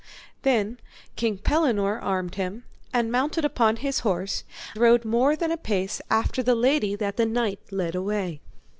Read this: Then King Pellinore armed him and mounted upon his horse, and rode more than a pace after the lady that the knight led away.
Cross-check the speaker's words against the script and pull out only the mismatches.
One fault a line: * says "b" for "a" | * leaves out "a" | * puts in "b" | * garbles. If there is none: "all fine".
* leaves out "and"